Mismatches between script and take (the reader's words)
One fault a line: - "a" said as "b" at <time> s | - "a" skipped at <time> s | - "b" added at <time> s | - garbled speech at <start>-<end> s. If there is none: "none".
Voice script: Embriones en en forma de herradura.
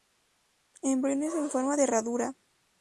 - "en" skipped at 1.5 s